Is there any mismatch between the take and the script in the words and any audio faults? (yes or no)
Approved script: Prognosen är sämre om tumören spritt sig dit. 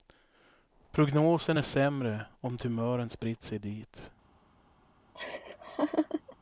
yes